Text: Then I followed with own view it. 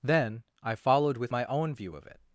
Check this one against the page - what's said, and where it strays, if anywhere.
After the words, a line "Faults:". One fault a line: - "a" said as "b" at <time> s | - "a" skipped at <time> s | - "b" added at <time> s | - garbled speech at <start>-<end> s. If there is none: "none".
Then I followed with my own view of it.
Faults:
- "my" added at 1.3 s
- "of" added at 1.9 s